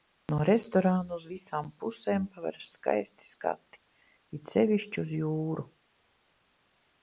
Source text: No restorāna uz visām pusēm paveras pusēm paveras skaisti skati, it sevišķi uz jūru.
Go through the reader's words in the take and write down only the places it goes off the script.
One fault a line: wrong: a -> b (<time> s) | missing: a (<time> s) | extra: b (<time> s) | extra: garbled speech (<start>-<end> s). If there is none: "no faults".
missing: pusēm paveras (2.7 s)